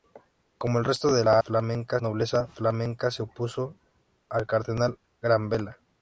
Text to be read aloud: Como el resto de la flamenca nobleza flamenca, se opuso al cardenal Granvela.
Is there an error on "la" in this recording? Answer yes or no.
no